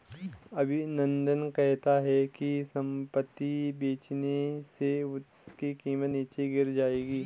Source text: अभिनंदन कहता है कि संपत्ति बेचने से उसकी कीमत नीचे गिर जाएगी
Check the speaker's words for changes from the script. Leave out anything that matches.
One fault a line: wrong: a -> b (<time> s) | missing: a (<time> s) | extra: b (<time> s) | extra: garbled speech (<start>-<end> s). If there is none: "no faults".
no faults